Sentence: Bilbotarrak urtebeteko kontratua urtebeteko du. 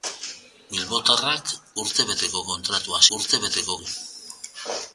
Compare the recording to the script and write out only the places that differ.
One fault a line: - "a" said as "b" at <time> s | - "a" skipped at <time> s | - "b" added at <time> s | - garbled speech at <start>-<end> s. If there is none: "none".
none